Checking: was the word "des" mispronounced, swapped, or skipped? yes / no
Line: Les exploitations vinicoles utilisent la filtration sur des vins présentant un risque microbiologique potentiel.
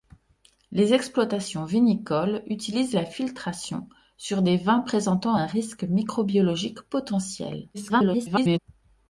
no